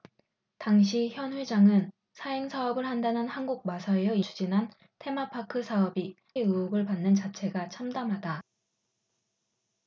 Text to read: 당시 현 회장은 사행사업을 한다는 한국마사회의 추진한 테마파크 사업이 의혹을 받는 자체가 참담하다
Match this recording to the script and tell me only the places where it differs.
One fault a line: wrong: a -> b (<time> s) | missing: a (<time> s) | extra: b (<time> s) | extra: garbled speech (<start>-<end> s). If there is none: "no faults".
no faults